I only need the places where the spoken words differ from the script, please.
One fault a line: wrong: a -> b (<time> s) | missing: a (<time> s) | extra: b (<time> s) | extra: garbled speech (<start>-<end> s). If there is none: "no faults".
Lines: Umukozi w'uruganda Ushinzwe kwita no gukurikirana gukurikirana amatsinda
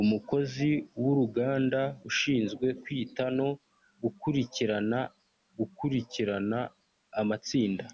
no faults